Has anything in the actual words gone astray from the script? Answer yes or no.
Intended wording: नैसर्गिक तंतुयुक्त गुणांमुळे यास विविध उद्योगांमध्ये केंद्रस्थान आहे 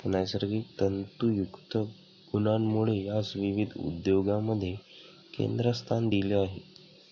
yes